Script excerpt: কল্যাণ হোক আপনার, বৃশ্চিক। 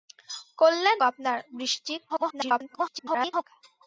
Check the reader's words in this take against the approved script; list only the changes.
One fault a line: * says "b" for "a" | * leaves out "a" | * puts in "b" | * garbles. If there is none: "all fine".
* leaves out "হোক"
* garbles